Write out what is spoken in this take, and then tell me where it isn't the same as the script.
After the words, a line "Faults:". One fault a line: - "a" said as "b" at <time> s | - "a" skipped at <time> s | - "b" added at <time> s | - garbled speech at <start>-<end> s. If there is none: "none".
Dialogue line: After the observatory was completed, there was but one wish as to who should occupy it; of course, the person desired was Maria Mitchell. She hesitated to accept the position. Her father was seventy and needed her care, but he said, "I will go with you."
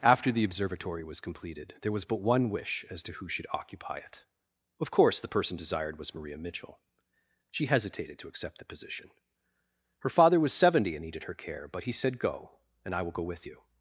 After the observatory was completed, there was but one wish as to who should occupy it; of course, the person desired was Maria Mitchell. She hesitated to accept the position. Her father was seventy and needed her care, but he said, "Go, and I will go with you."
Faults:
- "Go and" added at 12.2 s